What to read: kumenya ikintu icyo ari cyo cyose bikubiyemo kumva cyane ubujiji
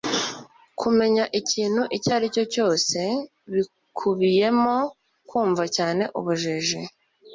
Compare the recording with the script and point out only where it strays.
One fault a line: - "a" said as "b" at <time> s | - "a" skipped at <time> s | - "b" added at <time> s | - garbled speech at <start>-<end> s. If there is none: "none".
none